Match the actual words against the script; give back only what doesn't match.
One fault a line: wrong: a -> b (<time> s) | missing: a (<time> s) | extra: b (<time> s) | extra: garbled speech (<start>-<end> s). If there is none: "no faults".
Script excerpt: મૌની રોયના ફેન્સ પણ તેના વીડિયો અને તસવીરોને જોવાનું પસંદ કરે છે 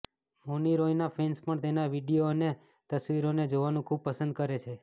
extra: ખૂબ (3.9 s)